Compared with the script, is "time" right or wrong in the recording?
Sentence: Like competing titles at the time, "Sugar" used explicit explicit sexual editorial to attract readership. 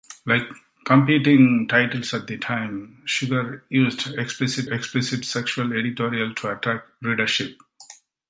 right